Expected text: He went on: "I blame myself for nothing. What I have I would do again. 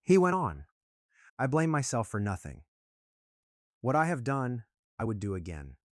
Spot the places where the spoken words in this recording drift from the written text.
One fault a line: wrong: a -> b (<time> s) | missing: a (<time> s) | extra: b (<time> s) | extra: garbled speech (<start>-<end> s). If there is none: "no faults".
extra: done (4.2 s)